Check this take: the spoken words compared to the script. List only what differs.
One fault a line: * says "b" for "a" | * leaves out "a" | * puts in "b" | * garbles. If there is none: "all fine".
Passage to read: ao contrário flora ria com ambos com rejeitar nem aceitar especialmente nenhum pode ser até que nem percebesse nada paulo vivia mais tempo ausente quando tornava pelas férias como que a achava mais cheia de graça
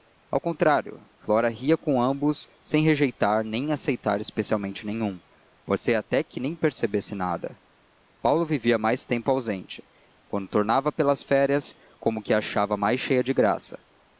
* says "sem" for "com"